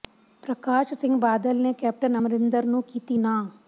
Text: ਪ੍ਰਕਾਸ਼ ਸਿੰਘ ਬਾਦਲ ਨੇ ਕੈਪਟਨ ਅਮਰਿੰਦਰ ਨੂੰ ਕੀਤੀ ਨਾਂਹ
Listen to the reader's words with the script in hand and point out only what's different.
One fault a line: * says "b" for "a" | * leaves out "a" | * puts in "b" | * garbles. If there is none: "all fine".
all fine